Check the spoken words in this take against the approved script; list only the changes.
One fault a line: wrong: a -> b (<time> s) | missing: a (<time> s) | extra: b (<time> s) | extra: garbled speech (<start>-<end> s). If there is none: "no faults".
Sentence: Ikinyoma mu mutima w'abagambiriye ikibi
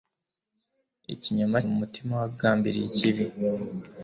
no faults